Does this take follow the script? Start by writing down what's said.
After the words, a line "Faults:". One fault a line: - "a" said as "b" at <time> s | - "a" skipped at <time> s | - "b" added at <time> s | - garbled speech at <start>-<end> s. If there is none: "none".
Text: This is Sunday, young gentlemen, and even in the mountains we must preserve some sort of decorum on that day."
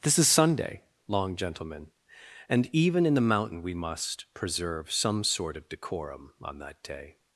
This is Sunday, long gentlemen, and even in the mountain we must preserve some sort of decorum on that day."
Faults:
- "young" said as "long" at 1.1 s
- "mountains" said as "mountain" at 3.2 s